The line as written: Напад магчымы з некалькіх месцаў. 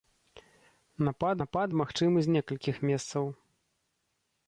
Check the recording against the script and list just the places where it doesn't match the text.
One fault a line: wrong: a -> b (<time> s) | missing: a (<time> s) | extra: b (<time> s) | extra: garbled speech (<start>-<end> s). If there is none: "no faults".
extra: напад (1.4 s)